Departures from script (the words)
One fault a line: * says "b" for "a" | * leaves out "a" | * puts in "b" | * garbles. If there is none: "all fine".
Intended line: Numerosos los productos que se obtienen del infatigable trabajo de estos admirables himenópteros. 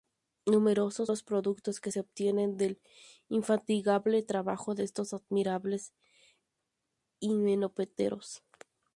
all fine